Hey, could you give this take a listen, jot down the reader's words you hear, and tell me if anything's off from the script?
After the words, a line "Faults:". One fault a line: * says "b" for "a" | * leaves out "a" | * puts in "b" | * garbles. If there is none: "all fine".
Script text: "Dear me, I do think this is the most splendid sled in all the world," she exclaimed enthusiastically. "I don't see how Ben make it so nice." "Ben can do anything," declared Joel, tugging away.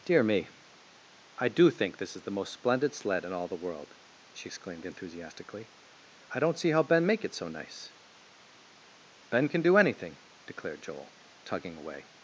"Dear me, I do think this is the most splendid sled in all the world," she exclaimed enthusiastically. "I don't see how Ben make it so nice." "Ben can do anything," declared Joel, tugging away.
Faults:
all fine